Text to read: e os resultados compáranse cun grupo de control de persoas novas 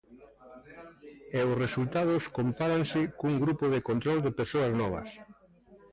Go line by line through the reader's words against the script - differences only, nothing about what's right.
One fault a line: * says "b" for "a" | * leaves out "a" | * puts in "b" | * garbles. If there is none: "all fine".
all fine